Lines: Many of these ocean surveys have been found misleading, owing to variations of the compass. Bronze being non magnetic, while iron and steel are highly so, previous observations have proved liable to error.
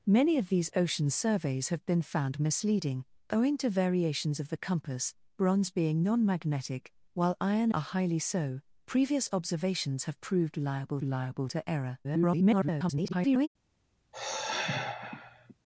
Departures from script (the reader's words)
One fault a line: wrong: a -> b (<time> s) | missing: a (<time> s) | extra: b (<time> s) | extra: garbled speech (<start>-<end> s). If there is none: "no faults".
missing: and steel (7.7 s)
extra: liable (11.0 s)
extra: garbled speech (12.0-13.5 s)